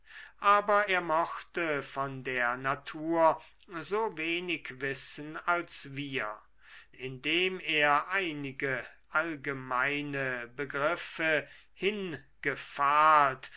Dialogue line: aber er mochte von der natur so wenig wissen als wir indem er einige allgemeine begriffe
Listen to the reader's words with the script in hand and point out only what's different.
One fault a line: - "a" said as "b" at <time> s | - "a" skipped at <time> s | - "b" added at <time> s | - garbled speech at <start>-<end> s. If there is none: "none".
none